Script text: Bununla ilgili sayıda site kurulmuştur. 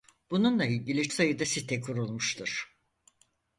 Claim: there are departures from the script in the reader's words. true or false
false